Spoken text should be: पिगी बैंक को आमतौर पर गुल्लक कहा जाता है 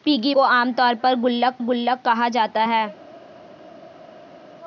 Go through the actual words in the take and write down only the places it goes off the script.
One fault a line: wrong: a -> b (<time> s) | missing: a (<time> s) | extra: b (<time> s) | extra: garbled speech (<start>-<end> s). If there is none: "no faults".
missing: बैंक (0.3 s)
extra: गुल्लक (1.6 s)